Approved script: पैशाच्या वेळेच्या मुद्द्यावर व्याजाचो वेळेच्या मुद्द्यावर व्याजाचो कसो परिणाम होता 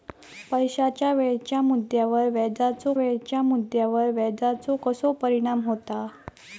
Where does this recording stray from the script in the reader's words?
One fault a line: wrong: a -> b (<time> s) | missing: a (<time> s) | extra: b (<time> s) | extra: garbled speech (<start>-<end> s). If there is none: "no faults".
no faults